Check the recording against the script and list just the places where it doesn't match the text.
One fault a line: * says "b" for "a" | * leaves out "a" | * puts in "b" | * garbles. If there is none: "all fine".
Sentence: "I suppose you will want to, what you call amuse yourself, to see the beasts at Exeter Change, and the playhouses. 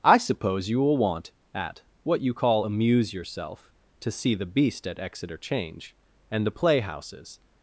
* says "at" for "to"
* says "beast" for "beasts"